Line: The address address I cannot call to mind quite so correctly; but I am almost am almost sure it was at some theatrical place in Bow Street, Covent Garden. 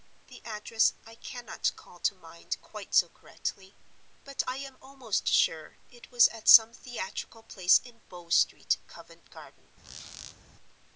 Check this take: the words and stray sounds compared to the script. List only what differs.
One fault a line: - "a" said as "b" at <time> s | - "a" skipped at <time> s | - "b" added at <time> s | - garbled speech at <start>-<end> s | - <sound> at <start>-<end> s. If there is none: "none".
- "address" skipped at 0.9 s
- "am almost" skipped at 5.3 s
- squeak at 9.8-10.4 s